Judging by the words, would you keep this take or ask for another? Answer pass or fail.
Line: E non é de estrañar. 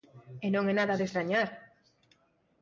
fail